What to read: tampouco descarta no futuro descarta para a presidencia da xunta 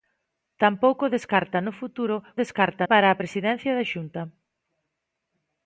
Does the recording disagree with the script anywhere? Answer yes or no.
no